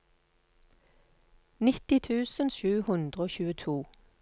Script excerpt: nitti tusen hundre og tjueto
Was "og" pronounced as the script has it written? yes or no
yes